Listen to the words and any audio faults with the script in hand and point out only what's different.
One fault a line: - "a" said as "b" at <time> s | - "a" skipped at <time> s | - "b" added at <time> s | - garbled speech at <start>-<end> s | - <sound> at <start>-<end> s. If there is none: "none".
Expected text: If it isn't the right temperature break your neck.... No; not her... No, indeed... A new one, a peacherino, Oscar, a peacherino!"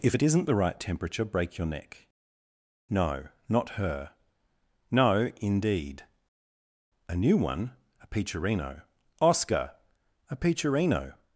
none